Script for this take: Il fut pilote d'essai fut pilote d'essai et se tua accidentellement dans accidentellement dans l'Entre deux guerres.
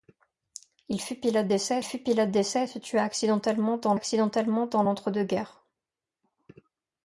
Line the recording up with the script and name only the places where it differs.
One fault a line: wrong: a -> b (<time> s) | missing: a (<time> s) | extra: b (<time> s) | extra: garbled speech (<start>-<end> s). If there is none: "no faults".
no faults